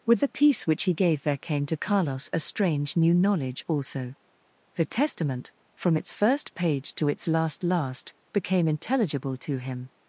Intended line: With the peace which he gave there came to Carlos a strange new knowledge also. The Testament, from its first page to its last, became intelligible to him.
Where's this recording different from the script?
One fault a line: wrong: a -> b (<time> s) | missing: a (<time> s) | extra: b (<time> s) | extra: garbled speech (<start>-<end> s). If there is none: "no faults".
extra: last (7.6 s)